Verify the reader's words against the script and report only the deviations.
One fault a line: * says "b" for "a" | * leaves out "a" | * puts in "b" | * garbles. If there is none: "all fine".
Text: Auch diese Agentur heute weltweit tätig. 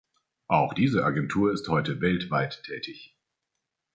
* puts in "ist"